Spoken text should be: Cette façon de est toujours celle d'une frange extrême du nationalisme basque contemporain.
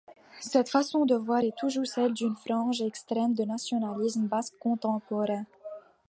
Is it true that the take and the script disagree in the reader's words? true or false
true